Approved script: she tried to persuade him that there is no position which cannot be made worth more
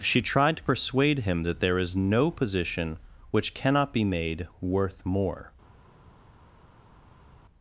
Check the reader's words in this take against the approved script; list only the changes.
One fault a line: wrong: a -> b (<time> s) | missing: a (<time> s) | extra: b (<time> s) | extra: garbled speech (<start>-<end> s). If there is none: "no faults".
no faults